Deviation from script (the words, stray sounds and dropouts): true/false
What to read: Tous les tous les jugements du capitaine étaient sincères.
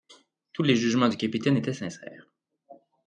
true